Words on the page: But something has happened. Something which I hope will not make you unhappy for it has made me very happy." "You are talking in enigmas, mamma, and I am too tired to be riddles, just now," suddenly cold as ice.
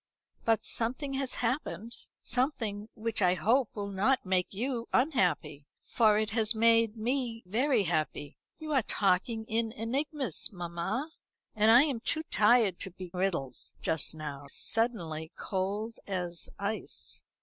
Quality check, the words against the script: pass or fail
pass